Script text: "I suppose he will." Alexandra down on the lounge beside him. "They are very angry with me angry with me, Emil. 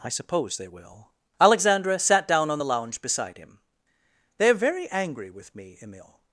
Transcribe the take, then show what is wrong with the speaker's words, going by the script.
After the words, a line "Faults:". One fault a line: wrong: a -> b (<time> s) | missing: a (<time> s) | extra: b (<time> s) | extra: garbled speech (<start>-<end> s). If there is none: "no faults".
"I suppose they will." Alexandra sat down on the lounge beside him. "They are very angry with me, Emil.
Faults:
wrong: he -> they (0.6 s)
extra: sat (2.0 s)
missing: angry with me (5.8 s)